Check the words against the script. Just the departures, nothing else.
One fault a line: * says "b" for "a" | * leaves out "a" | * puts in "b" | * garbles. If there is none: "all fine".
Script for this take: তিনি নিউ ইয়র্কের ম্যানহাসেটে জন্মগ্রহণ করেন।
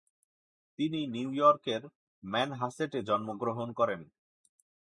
all fine